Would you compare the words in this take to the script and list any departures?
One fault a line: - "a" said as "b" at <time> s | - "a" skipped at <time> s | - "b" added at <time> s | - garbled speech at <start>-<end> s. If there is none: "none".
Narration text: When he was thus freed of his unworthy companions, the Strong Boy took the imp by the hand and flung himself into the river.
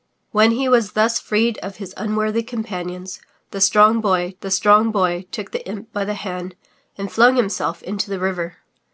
- "the Strong Boy" added at 4.4 s